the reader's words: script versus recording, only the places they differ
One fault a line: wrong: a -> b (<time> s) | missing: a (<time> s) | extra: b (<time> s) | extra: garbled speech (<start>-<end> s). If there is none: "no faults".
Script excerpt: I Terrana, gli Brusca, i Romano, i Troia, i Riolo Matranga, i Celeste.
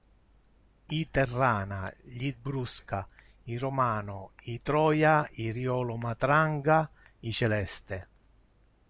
no faults